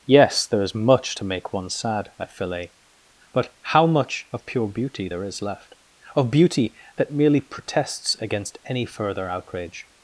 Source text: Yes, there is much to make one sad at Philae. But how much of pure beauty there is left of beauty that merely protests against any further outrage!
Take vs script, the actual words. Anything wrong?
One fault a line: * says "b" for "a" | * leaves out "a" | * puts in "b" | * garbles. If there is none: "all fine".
all fine